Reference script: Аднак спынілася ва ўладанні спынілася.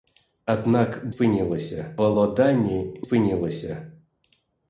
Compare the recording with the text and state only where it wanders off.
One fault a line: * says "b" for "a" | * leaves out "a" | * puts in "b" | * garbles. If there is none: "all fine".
all fine